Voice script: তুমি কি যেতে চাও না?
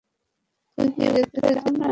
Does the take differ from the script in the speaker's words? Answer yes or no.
no